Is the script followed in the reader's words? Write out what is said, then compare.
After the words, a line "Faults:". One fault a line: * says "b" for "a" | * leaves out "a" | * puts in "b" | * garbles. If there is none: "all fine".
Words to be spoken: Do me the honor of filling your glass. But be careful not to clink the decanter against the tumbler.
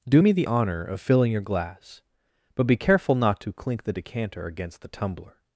Do me the honor of filling your glass. But be careful not to clink the decanter against the tumbler.
Faults:
all fine